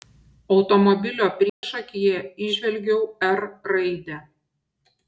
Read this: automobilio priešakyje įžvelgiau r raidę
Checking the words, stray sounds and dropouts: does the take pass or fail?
fail